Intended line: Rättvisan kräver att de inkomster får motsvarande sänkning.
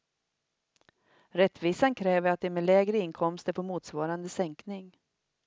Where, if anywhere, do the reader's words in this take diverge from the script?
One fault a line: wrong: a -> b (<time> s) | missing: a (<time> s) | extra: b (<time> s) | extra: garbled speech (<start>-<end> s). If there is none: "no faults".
extra: med lägre (2.5 s)